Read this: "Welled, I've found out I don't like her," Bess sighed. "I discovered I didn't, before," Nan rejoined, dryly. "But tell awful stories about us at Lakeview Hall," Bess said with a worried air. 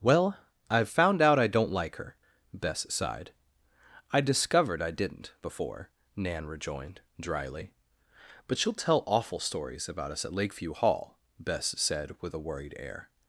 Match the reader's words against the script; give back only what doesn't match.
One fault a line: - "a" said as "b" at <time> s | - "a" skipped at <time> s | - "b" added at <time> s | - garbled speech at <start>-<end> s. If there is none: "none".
- "Welled" said as "Well" at 0.0 s
- "she'll" added at 8.6 s